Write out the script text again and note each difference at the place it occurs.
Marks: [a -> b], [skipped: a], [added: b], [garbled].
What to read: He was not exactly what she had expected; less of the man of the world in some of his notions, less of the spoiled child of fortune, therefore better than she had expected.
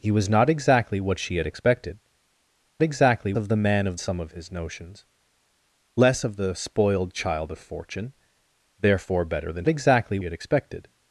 He was not exactly what she had expected; [less -> exactly] of the man of [skipped: the world in] some of his notions, less of the spoiled child of fortune, therefore better than [she -> exactly] had expected.